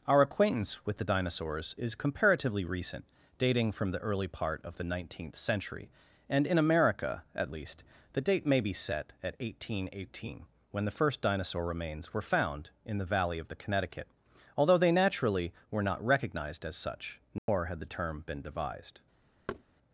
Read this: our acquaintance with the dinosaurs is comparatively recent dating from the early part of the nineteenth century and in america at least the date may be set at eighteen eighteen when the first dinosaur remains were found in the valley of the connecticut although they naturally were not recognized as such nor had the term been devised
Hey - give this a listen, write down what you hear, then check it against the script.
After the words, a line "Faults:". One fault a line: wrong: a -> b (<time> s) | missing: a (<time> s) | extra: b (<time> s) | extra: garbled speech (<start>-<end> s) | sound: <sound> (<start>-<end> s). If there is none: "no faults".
our acquaintance with the dinosaurs is comparatively recent dating from the early part of the nineteenth century and in america at least the date may be set at eighteen eighteen when the first dinosaur remains were found in the valley of the connecticut although they naturally were not recognized as such nor had the term been devised
Faults:
sound: dropout (17.4-17.5 s)
sound: thud (19.5-19.6 s)